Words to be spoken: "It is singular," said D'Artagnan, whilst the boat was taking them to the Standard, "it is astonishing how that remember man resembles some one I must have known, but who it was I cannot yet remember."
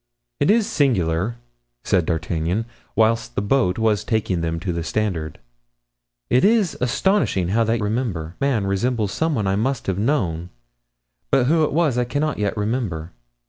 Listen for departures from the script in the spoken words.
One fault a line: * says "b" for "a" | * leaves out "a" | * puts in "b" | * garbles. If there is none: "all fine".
all fine